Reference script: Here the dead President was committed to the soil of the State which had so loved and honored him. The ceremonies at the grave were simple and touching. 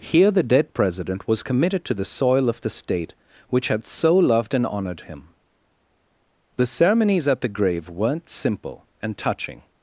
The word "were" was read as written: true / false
false